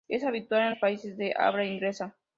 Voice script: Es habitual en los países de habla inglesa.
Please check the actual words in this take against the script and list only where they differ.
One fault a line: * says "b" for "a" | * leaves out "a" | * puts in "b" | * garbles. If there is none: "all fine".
all fine